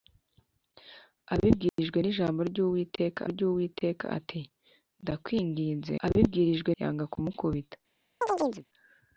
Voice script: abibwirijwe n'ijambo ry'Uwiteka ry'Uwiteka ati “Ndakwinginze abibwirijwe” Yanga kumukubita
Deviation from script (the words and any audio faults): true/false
true